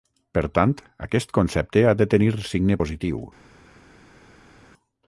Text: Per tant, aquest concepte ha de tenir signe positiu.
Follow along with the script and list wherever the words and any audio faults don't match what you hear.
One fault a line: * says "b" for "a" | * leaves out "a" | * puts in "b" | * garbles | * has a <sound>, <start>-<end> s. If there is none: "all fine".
all fine